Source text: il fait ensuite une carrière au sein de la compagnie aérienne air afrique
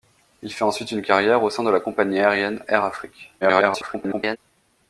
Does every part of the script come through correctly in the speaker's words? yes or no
no